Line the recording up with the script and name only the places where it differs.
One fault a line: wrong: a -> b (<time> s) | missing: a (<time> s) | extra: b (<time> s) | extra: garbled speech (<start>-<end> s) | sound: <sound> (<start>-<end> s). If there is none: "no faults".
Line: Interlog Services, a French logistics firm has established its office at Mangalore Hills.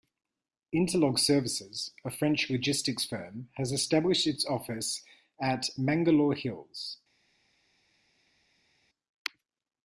no faults